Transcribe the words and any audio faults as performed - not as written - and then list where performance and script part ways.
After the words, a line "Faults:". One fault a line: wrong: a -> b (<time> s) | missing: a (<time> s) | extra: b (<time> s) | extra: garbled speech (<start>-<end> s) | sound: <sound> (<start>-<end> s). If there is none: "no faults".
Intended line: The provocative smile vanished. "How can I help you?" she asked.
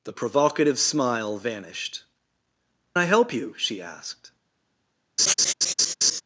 The provocative smile vanished. "I help you?" she asked.
Faults:
missing: How can (2.0 s)
sound: laugh (5.2-6.2 s)